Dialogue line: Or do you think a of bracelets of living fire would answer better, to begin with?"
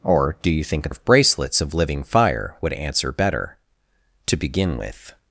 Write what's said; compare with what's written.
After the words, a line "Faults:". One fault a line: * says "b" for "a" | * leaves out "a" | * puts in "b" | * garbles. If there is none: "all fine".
Or do you think a of bracelets of living fire would answer better, to begin with?"
Faults:
all fine